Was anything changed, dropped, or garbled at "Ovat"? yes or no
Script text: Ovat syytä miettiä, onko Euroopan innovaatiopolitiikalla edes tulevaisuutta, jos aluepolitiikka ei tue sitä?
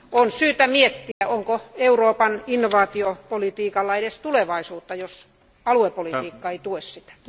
yes